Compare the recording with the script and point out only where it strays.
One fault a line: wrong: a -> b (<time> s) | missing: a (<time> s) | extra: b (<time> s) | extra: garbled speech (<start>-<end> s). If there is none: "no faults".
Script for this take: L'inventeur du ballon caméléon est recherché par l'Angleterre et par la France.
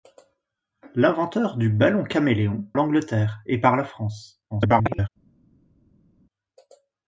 missing: est recherché par (2.6 s)
extra: garbled speech (4.5-5.1 s)